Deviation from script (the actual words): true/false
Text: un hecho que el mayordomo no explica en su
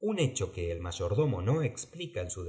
false